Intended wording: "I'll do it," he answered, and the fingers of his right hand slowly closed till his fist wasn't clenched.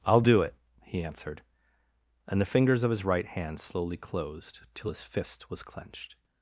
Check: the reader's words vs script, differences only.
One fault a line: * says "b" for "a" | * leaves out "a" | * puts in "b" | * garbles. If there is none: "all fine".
* says "was" for "wasn't"